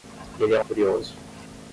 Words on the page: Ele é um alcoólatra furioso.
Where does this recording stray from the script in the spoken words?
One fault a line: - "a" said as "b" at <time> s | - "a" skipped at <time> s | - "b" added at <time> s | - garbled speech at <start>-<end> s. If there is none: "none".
- "alcoólatra" skipped at 0.7 s